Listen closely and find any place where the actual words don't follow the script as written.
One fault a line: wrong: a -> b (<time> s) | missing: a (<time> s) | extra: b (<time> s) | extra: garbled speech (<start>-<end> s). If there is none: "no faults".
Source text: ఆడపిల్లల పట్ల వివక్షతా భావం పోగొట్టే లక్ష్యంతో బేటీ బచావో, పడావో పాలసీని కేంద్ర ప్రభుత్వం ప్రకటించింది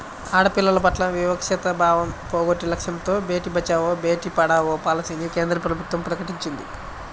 extra: బేటీ (4.0 s)